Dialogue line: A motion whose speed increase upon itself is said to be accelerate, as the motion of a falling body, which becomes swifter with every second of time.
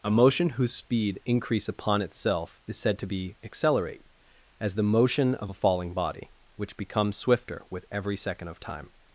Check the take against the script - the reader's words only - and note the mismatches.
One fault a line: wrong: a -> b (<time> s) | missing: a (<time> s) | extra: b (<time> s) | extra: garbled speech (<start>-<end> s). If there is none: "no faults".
no faults